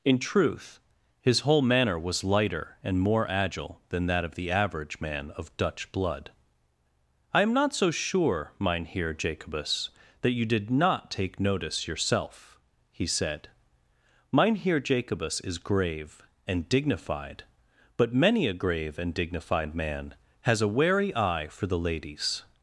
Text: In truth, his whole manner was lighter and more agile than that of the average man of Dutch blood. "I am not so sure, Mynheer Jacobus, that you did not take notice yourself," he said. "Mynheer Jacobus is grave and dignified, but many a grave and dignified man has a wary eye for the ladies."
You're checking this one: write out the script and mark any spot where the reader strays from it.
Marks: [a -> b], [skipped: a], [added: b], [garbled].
In truth, his whole manner was lighter and more agile than that of the average man of Dutch blood. "I am not so sure, Mynheer Jacobus, that you did not take notice yourself," he said. "Mynheer Jacobus is grave and dignified, but many a grave and dignified man has a wary eye for the ladies."